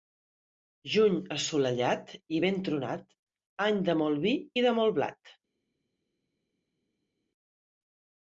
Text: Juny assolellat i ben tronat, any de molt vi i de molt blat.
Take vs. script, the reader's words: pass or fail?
pass